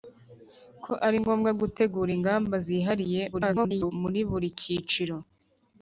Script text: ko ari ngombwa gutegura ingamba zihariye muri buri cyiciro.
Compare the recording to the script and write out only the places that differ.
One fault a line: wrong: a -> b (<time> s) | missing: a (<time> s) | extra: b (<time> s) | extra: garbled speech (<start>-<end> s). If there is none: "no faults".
extra: garbled speech (3.3-3.9 s)